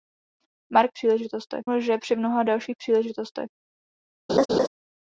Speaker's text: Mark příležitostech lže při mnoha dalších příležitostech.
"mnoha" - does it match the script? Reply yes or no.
yes